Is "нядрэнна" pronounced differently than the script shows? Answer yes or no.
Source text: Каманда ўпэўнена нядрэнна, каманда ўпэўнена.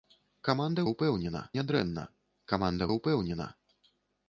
no